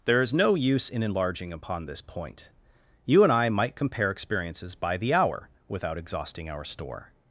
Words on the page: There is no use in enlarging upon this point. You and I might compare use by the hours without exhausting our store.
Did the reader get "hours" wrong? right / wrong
wrong